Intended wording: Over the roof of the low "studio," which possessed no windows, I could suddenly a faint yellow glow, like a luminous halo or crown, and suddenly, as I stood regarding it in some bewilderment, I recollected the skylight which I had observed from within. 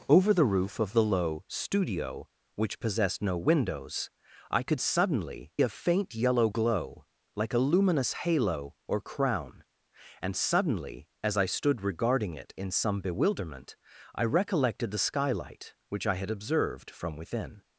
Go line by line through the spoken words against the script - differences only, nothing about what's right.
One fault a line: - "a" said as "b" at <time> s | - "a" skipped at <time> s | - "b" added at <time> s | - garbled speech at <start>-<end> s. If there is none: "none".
none